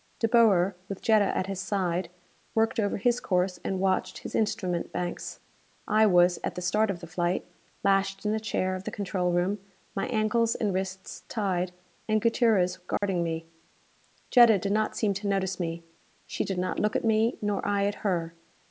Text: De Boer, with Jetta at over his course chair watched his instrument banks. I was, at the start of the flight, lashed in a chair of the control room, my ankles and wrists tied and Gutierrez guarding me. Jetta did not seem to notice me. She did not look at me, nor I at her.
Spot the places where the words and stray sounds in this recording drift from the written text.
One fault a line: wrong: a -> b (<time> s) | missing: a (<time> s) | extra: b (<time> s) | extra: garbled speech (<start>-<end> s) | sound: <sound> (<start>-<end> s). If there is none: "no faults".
extra: his side worked (1.4 s)
wrong: chair -> and (3.6 s)
sound: dropout (13.0-13.0 s)